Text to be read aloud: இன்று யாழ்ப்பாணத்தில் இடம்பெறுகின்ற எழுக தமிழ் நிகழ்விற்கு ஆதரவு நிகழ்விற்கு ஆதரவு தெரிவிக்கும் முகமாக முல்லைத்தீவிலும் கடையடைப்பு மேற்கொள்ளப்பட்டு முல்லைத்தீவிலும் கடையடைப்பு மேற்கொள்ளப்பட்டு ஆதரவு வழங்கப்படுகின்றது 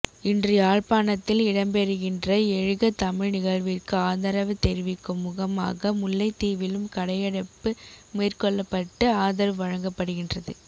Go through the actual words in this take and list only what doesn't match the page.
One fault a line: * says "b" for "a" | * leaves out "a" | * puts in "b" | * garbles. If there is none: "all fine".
* leaves out "நிகழ்விற்கு ஆதரவு"
* leaves out "முல்லைத்தீவிலும் கடையடைப்பு மேற்கொள்ளப்பட்டு"